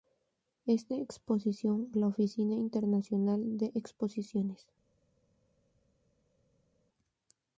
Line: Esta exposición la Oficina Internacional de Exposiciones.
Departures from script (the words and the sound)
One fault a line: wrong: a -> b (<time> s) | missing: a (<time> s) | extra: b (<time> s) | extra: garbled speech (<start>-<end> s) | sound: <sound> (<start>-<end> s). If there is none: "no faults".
no faults